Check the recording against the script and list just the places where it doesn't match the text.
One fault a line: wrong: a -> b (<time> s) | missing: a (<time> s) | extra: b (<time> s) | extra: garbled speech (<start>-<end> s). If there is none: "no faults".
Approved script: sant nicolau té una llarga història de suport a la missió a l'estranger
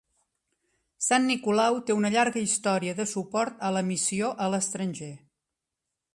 no faults